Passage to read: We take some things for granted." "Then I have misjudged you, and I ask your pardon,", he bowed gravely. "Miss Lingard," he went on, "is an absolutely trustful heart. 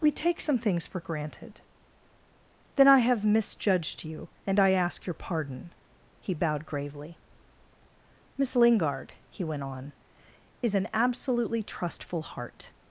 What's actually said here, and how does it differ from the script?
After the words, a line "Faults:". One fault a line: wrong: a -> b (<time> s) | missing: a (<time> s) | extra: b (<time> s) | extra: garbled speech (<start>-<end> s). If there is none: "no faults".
We take some things for granted." "Then I have misjudged you, and I ask your pardon,", he bowed gravely. "Miss Lingard," he went on, "is an absolutely trustful heart.
Faults:
no faults